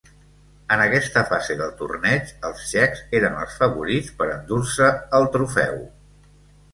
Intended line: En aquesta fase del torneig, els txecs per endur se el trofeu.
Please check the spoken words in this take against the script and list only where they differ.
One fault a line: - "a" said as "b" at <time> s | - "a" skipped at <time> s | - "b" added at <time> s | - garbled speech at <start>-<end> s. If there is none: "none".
- "eren els favorits" added at 3.2 s